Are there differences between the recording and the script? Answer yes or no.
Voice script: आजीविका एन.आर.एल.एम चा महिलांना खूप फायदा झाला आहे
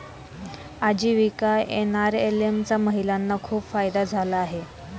no